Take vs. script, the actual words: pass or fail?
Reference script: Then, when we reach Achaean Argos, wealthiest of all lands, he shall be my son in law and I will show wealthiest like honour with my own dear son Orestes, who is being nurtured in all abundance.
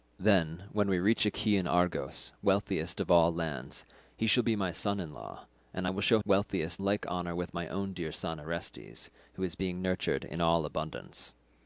pass